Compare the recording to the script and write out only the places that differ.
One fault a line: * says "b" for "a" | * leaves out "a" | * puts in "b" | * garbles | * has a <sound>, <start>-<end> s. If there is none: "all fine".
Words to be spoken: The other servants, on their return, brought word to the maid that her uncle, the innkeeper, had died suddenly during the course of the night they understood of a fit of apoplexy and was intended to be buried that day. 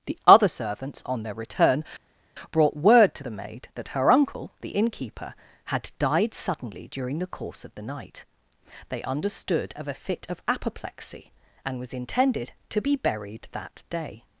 all fine